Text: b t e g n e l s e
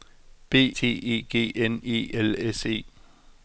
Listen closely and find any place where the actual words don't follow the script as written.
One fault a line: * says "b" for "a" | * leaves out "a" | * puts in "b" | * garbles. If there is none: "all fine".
all fine